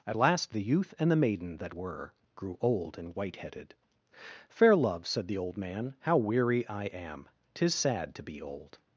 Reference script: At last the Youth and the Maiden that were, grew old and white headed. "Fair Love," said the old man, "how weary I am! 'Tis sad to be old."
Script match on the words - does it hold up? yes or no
yes